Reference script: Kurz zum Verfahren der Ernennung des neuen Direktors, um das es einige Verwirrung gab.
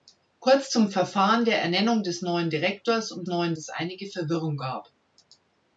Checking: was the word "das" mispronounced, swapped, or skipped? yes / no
yes